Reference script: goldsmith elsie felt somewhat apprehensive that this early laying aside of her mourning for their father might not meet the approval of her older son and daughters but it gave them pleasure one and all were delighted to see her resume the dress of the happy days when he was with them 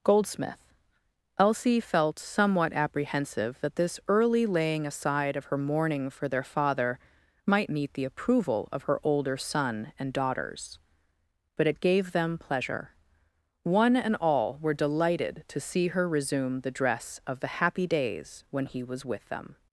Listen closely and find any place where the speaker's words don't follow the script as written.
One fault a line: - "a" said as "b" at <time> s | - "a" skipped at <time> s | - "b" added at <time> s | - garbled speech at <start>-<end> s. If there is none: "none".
- "not" skipped at 7.7 s